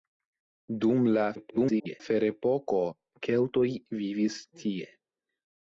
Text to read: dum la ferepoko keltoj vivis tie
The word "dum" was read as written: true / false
true